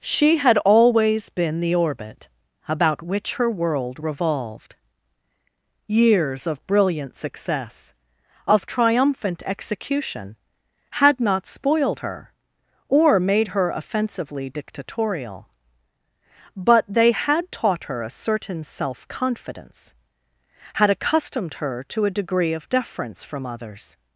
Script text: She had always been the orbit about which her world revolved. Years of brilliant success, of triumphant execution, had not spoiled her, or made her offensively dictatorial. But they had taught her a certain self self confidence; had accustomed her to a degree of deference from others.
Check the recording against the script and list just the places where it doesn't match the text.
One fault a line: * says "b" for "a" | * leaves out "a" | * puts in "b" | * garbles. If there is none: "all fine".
* leaves out "self"